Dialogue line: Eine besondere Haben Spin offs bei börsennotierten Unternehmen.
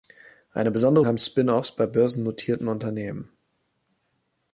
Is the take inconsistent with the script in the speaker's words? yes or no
no